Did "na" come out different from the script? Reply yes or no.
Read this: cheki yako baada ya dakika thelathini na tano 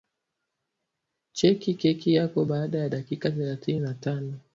no